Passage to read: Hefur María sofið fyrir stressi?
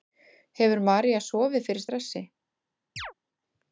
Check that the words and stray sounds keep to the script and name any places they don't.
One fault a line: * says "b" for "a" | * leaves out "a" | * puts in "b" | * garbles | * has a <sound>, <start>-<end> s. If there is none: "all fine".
* has a chirp, 3.0-3.1 s